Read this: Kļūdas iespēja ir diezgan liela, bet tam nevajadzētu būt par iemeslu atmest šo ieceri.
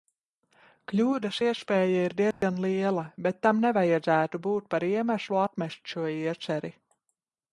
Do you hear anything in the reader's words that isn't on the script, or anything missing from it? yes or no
no